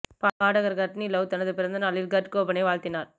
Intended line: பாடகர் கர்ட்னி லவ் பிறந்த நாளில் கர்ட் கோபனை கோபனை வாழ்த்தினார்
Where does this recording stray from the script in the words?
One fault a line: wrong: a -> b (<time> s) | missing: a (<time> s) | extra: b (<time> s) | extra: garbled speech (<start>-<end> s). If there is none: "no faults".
extra: தனது (1.3 s)
missing: கோபனை (2.6 s)